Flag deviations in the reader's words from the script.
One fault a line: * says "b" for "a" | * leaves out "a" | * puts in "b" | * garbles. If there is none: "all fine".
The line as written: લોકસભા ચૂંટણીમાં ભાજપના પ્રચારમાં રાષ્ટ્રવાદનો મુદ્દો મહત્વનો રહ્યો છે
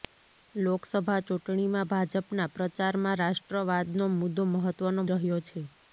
all fine